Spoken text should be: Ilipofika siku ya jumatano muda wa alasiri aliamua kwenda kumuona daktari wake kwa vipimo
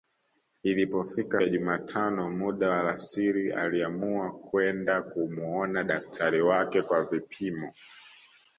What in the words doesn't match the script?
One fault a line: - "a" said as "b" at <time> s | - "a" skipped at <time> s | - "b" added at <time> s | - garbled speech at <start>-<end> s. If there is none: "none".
- "siku" skipped at 1.4 s